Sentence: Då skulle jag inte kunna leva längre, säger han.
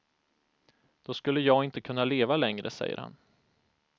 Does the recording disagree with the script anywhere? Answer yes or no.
no